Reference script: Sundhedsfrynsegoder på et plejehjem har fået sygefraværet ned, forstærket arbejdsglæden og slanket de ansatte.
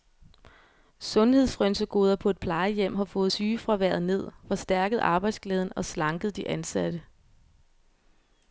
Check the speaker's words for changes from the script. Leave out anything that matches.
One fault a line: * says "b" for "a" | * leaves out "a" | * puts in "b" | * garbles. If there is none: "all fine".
all fine